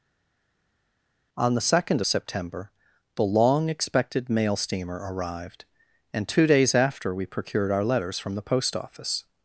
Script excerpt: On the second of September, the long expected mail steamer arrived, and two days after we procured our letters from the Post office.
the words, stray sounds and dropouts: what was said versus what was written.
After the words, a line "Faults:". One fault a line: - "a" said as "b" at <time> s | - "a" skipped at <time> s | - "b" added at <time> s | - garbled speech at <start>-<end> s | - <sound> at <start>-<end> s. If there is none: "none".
On the second September, the long expected mail steamer arrived, and two days after we procured our letters from the Post office.
Faults:
- "of" skipped at 2.0 s